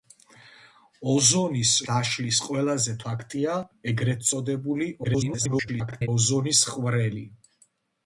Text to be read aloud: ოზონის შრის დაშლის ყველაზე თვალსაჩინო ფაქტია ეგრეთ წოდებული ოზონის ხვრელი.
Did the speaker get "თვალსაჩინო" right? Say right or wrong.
wrong